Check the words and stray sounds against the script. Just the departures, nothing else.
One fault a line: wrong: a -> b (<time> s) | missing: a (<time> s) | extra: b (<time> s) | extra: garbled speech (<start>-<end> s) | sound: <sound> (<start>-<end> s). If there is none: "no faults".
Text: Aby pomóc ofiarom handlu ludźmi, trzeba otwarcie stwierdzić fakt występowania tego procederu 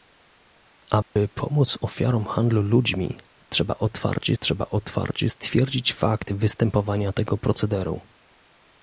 sound: dropout (1.0-1.2 s)
extra: trzeba otwarcie (4.4 s)